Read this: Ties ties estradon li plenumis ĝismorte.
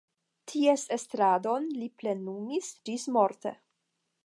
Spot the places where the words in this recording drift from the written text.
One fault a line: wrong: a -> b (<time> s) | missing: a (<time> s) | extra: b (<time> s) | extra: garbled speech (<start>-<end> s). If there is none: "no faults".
missing: ties (0.8 s)